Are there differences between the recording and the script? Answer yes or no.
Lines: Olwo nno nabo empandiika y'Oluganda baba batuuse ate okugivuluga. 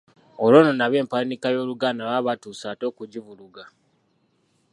no